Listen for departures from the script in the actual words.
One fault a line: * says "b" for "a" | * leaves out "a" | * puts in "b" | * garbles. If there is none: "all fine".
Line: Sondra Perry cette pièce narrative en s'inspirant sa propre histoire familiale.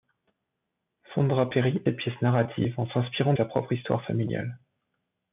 all fine